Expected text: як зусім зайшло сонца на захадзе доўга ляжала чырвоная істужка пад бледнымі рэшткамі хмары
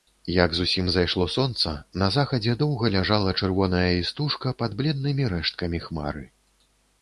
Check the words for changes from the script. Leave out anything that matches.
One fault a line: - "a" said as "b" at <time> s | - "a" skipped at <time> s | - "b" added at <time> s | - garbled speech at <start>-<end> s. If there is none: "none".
none